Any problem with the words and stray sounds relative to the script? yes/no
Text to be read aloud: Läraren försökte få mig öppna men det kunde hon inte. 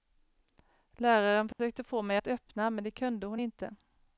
yes